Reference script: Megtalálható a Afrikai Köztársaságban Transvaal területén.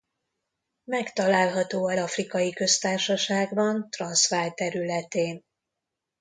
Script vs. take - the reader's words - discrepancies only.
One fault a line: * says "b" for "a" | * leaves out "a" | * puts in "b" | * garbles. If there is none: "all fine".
all fine